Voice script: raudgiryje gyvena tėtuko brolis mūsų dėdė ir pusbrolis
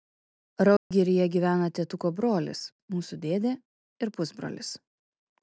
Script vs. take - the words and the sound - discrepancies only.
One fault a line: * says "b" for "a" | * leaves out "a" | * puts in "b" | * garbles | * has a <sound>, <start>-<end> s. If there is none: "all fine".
* has a dropout, 0.8-0.9 s